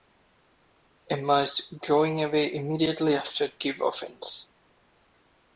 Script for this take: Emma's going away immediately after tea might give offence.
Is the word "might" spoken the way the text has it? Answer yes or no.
no